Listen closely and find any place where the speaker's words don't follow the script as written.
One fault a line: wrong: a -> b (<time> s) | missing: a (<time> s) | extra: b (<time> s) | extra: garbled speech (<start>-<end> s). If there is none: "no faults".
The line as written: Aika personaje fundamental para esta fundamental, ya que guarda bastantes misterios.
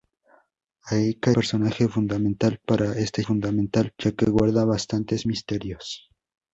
no faults